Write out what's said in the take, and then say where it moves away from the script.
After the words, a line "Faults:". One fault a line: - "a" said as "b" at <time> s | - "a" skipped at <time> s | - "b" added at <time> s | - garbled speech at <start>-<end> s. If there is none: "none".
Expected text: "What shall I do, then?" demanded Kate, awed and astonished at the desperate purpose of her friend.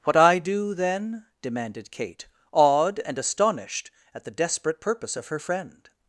"What I do, then?" demanded Kate, awed and astonished at the desperate purpose of her friend.
Faults:
- "shall" skipped at 0.1 s